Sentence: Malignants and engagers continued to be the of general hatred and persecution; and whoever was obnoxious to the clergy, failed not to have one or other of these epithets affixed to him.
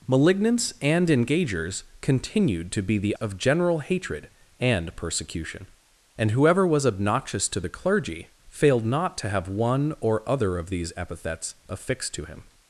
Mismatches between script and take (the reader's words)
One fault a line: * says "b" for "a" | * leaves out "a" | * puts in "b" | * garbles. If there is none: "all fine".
all fine